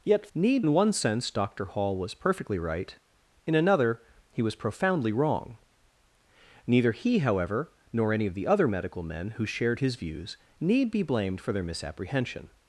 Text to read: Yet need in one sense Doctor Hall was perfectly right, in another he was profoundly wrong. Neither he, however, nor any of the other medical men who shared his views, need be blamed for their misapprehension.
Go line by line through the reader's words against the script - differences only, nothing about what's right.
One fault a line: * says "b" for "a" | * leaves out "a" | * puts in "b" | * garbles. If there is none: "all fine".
all fine